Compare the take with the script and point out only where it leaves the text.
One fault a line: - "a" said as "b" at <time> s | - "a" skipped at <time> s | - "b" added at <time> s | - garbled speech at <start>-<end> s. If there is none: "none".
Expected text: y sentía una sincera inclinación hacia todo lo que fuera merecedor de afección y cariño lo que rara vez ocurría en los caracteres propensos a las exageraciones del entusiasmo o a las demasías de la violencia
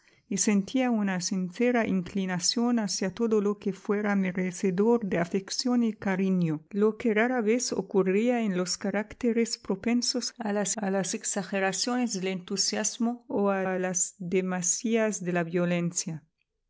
- "a las" added at 10.8 s
- "a" added at 13.6 s